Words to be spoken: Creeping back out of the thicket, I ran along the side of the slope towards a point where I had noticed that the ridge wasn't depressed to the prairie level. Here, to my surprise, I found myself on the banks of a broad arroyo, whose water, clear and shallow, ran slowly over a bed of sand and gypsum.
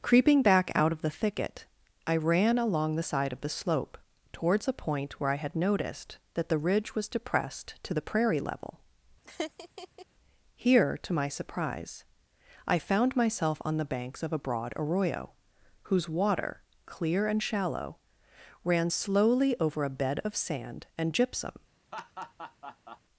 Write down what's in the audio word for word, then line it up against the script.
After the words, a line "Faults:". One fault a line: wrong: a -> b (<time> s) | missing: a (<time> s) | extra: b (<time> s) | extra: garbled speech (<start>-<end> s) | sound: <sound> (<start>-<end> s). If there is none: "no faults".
Creeping back out of the thicket, I ran along the side of the slope towards a point where I had noticed that the ridge was depressed to the prairie level. Here, to my surprise, I found myself on the banks of a broad arroyo, whose water, clear and shallow, ran slowly over a bed of sand and gypsum.
Faults:
wrong: wasn't -> was (6.9 s)
sound: laugh (9.2-10.1 s)
sound: laugh (21.9-23.0 s)